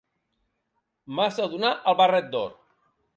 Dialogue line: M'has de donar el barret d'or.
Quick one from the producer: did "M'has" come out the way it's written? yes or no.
yes